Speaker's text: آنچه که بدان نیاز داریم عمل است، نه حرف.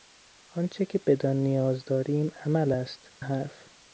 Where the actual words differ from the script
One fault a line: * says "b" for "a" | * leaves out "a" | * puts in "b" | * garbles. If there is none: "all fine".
* leaves out "نه"